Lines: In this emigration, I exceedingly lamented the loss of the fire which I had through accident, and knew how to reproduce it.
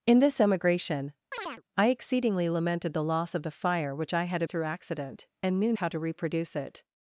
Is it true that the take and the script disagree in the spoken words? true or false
false